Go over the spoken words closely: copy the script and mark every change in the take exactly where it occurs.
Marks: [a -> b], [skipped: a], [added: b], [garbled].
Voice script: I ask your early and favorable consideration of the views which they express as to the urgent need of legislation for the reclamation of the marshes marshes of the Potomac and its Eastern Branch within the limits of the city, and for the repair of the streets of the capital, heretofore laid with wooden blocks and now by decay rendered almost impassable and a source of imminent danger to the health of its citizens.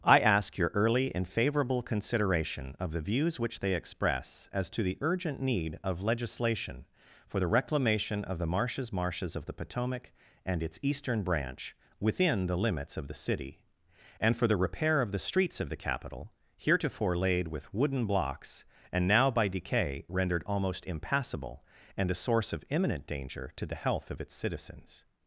I ask your early and favorable consideration of the views which they express as to the urgent need of legislation for the reclamation of the marshes marshes of the Potomac and its Eastern Branch within the limits of the city, and for the repair of the streets of the capital, heretofore laid with wooden blocks and now by decay rendered almost impassable and a source of imminent danger to the health of its citizens.